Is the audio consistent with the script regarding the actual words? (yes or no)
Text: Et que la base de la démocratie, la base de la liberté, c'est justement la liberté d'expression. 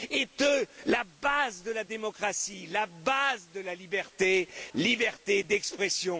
no